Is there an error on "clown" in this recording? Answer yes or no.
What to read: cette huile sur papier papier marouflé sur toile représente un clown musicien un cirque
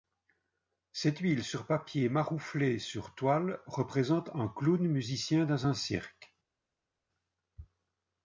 no